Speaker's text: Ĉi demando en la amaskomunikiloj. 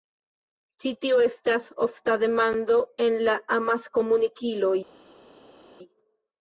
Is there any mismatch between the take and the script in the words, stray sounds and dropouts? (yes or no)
yes